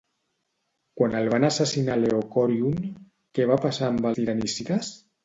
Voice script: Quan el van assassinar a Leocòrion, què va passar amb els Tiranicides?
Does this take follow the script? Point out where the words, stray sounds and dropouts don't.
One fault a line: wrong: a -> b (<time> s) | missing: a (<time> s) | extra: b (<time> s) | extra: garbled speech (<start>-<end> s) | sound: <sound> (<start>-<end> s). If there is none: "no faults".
missing: els (4.1 s)